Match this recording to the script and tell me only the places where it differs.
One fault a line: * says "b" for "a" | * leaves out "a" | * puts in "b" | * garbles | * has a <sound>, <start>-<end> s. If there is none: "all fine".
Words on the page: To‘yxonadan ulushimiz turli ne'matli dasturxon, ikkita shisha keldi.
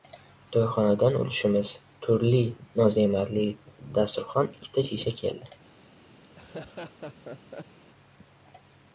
* puts in "noz"
* has a laugh, 6.2-7.8 s